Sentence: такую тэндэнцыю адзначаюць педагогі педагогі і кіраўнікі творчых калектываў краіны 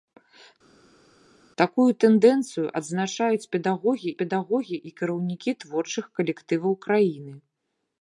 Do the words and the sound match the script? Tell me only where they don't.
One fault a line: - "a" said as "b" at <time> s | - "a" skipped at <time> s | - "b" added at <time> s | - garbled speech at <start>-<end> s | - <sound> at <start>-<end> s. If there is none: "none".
none